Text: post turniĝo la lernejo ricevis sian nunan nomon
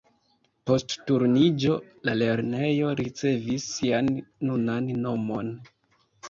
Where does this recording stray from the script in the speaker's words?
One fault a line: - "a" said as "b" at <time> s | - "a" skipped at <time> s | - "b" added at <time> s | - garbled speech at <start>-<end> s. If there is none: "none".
none